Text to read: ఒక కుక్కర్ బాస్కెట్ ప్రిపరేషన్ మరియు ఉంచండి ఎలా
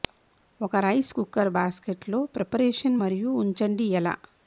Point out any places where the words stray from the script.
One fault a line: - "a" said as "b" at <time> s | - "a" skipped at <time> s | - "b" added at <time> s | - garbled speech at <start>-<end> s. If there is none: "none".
- "రైస్" added at 0.8 s
- "లో" added at 2.1 s